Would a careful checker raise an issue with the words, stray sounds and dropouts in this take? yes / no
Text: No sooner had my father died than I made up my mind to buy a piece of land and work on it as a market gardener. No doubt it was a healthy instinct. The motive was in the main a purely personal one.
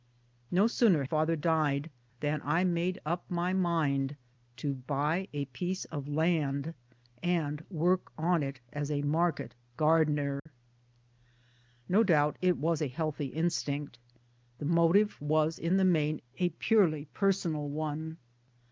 yes